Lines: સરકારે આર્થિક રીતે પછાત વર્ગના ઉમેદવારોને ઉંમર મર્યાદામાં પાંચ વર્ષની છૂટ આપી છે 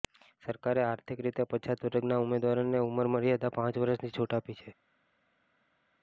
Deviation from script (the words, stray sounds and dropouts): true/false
false